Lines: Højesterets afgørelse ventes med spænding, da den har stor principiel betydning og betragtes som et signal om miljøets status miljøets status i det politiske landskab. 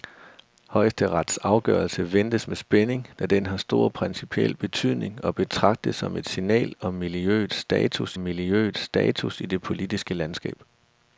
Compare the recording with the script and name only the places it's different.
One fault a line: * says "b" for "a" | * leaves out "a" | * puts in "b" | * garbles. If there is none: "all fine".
all fine